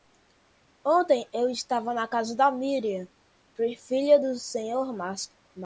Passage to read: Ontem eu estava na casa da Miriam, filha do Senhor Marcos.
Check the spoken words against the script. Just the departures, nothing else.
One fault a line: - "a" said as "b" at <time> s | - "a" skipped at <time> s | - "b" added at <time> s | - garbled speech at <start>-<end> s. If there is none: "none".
none